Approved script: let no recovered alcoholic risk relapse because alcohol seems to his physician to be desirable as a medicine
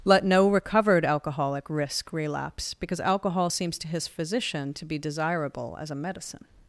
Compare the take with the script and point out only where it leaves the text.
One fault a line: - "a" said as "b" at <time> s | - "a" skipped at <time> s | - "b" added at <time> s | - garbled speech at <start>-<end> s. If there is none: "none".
none